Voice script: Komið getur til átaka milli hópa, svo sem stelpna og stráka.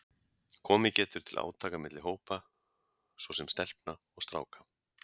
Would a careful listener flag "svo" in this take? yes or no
no